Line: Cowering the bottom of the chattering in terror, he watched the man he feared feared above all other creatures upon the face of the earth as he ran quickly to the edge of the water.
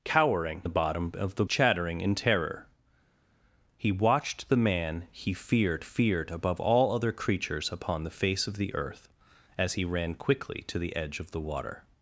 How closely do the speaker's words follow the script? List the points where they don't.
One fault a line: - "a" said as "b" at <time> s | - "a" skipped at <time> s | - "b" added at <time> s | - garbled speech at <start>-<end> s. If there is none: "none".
none